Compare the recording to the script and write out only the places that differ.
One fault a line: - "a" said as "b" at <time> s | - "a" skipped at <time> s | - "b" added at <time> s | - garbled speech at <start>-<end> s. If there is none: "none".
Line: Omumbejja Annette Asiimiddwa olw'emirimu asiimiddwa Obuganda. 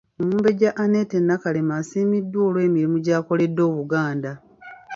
- "Nakalema" added at 1.2 s
- "asiimiddwa" said as "gy'akoledde" at 3.0 s